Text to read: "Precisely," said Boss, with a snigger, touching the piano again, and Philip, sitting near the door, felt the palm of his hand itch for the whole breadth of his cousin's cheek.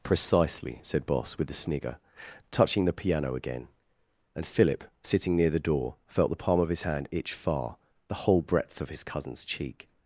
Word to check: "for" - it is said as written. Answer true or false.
false